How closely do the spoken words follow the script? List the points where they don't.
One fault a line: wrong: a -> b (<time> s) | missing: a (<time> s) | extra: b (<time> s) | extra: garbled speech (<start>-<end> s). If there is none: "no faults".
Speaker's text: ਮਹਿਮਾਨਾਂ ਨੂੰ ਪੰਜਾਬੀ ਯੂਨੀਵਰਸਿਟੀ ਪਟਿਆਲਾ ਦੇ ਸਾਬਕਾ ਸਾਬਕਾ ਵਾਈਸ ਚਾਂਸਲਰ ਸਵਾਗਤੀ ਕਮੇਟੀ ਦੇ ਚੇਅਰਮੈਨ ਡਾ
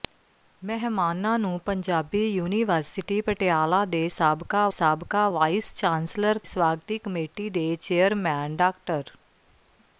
no faults